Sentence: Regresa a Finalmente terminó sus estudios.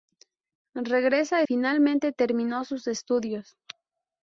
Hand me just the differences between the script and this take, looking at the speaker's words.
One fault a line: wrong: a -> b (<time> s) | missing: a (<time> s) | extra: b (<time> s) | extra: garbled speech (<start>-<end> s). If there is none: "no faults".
no faults